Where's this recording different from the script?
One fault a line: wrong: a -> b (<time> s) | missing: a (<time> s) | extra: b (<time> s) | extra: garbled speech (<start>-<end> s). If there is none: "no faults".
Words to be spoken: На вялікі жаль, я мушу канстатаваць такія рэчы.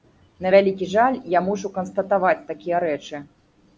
no faults